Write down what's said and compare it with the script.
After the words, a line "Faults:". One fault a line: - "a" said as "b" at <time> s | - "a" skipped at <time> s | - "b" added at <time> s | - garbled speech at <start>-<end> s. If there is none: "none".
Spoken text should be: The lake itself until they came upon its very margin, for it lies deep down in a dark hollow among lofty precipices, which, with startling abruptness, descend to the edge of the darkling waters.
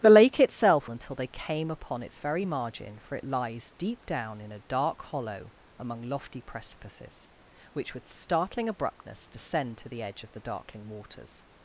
The lake itself until they came upon its very margin, for it lies deep down in a dark hollow among lofty precipices, which, with startling abruptness, descend to the edge of the darkling waters.
Faults:
none